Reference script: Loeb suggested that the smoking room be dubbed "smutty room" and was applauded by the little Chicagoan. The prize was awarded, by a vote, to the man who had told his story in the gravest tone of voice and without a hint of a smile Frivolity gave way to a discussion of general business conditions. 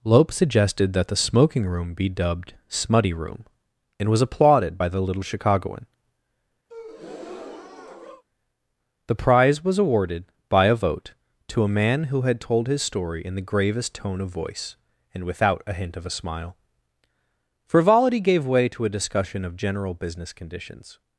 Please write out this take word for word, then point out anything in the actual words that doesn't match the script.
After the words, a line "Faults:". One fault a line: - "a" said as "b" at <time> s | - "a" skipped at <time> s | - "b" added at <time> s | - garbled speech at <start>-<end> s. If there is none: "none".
Loeb suggested that the smoking room be dubbed "smutty room" and was applauded by the little Chicagoan. The prize was awarded, by a vote, to a man who had told his story in the gravest tone of voice and without a hint of a smile Frivolity gave way to a discussion of general business conditions.
Faults:
- "the" said as "a" at 11.6 s